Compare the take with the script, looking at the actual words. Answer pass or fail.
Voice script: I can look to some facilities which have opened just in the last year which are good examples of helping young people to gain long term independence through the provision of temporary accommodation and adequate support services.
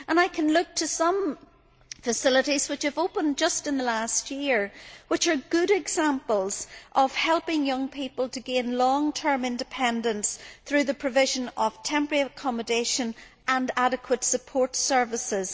pass